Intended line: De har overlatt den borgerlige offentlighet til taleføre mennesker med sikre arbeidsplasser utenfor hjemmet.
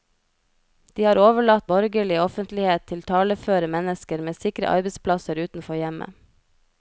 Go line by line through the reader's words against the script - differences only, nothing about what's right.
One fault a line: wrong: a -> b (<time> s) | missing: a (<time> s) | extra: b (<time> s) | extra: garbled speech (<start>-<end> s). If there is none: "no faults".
missing: den (1.7 s)